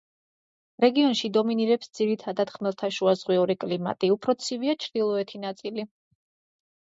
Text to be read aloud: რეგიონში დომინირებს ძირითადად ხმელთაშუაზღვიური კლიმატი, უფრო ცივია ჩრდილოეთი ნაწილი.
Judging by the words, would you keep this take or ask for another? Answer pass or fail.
pass